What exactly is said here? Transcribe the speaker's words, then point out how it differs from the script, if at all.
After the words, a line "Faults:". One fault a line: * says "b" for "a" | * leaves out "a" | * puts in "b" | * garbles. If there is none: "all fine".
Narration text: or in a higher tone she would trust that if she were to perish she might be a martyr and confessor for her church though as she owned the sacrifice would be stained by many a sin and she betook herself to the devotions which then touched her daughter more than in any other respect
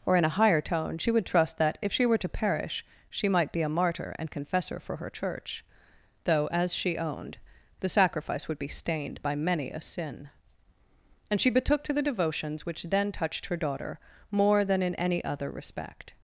or in a higher tone she would trust that if she were to perish she might be a martyr and confessor for her church though as she owned the sacrifice would be stained by many a sin and she betook to the devotions which then touched her daughter more than in any other respect
Faults:
* leaves out "herself"